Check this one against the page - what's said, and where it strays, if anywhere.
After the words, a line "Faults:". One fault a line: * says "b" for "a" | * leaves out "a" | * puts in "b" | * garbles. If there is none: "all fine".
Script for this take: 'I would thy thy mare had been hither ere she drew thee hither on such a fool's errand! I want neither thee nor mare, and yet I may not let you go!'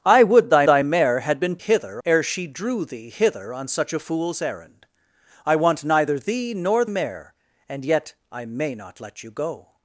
'I would thy thy mare had been hither ere she drew thee hither on such a fool's errand! I want neither thee nor mare, and yet I may not let you go!'
Faults:
all fine